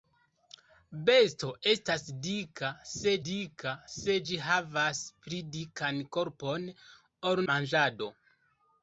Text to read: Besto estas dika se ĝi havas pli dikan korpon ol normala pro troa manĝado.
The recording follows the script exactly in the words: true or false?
false